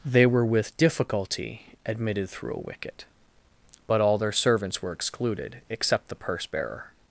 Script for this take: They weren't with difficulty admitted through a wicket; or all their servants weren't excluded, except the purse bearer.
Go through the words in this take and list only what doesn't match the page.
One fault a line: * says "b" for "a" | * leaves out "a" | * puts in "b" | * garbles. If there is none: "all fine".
* says "were" for "weren't"
* says "but" for "or"
* says "were" for "weren't"